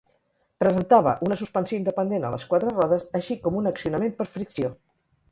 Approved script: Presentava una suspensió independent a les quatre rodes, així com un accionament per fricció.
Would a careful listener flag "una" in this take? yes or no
no